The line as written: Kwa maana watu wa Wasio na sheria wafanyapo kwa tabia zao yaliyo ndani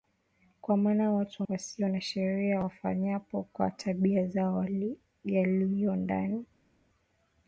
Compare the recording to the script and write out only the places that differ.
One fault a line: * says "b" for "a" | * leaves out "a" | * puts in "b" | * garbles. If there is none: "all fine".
all fine